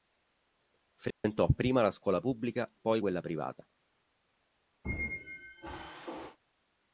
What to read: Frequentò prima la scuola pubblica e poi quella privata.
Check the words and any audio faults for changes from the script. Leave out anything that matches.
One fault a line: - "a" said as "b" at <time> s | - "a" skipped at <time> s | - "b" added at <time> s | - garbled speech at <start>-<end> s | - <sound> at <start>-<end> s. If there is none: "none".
- dropout at 1.1-1.2 s
- "e" skipped at 2.7 s
- squeak at 4.8-6.4 s